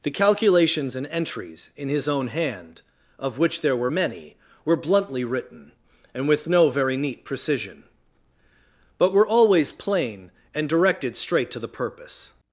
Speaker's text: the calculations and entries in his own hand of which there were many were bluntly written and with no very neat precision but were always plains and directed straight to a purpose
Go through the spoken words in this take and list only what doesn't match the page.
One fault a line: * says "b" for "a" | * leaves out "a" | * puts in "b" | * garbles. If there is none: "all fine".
* says "plain" for "plains"
* says "the" for "a"